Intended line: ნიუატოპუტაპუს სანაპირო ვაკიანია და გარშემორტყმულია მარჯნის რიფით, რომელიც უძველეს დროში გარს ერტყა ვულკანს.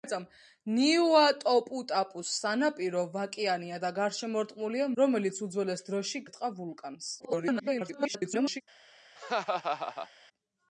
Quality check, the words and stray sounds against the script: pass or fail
fail